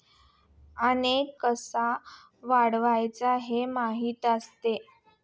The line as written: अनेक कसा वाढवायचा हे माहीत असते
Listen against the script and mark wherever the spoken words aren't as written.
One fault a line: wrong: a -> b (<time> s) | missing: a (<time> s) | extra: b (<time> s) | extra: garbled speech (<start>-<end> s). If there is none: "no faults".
no faults